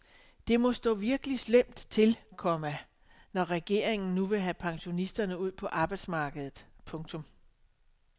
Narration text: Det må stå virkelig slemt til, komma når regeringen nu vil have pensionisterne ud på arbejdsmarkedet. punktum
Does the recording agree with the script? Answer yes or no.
yes